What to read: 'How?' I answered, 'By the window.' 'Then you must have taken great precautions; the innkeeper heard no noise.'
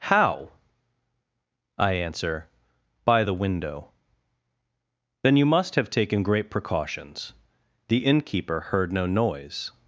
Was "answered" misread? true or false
true